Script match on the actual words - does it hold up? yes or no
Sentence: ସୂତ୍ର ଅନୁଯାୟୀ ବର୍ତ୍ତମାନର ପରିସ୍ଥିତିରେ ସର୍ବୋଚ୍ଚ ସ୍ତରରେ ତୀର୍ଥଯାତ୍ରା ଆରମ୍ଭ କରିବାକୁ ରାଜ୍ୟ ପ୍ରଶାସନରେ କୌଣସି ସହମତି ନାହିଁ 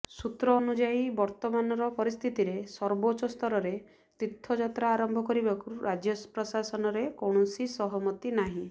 yes